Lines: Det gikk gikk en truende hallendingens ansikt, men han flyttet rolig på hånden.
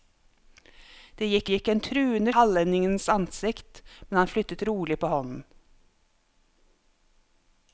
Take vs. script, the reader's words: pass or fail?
pass